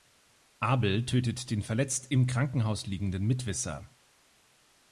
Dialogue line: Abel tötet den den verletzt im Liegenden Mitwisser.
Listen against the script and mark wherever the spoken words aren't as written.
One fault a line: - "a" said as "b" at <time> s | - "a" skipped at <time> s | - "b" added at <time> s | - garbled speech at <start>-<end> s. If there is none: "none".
- "den" skipped at 1.6 s
- "Krankenhaus" added at 2.2 s